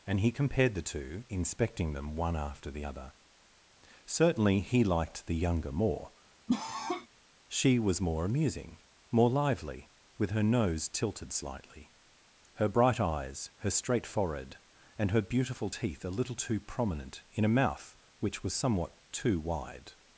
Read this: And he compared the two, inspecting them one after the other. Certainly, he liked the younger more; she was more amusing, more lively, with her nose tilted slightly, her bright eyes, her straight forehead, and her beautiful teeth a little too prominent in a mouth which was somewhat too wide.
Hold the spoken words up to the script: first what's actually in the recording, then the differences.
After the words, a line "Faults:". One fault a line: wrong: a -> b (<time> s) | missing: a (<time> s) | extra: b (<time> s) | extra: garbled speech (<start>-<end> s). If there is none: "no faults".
And he compared the two, inspecting them one after the other. Certainly, he liked the younger more; she was more amusing, more lively, with her nose tilted slightly, her bright eyes, her straight forehead, and her beautiful teeth a little too prominent in a mouth which was somewhat too wide.
Faults:
no faults